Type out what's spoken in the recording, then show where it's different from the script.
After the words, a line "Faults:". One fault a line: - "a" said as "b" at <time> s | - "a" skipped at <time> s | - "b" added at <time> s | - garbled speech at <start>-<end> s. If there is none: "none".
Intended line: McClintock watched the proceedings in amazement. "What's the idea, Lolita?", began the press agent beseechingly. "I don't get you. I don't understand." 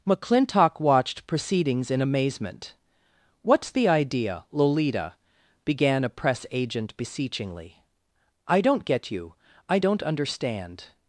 McClintock watched proceedings in amazement. "What's the idea, Lolita?", began a press agent beseechingly. "I don't get you. I don't understand."
Faults:
- "the" skipped at 1.3 s
- "the" said as "a" at 6.0 s